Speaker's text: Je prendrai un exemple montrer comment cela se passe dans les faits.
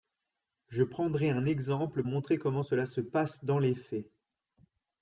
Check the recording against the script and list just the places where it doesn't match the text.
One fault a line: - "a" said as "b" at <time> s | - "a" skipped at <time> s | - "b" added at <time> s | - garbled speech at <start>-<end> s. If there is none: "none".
none